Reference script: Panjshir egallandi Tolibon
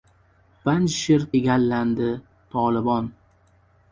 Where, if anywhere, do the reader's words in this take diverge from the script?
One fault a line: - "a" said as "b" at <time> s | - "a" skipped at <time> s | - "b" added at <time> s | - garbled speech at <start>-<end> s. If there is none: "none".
none